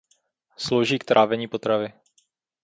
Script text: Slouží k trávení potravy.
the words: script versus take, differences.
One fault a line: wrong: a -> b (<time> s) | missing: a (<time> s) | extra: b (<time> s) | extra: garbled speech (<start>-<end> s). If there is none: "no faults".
no faults